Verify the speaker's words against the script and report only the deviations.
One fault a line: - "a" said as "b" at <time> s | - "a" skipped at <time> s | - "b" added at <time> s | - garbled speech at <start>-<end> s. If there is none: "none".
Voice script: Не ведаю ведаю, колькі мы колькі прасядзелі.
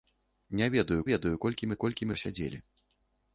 none